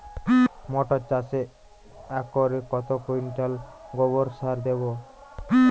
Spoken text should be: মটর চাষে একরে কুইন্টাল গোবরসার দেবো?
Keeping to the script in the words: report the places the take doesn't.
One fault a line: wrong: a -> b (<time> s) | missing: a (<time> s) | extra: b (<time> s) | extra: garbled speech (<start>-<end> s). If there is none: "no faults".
extra: কত (2.7 s)